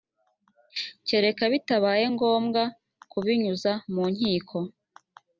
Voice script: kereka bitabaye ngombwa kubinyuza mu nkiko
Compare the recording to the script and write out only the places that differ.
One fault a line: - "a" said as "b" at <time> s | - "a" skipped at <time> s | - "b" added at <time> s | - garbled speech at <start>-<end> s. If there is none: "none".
none